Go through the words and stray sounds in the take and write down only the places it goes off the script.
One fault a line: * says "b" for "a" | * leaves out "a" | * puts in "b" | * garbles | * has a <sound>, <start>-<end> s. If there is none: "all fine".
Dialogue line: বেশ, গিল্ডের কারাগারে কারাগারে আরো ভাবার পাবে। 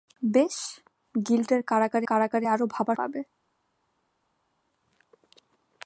all fine